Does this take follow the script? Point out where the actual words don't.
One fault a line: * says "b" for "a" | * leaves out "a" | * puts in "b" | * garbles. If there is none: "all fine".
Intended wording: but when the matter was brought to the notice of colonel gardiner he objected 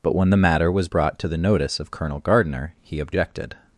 all fine